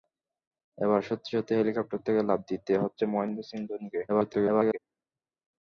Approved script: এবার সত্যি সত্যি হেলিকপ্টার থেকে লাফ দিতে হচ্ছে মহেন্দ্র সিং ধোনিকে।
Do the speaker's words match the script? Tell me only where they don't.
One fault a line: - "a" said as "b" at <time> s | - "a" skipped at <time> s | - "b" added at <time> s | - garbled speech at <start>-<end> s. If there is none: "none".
- garbled speech at 4.1-4.8 s